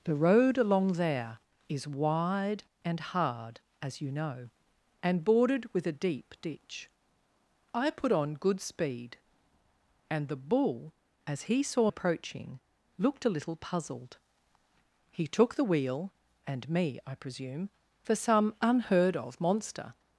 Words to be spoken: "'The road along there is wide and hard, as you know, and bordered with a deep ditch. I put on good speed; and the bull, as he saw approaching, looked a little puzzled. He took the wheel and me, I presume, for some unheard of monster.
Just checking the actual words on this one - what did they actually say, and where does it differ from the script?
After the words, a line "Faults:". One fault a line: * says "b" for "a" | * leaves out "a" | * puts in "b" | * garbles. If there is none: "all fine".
"'The road along there is wide and hard, as you know, and bordered with a deep ditch. I put on good speed; and the bull, as he saw approaching, looked a little puzzled. He took the wheel and me, I presume, for some unheard of monster.
Faults:
all fine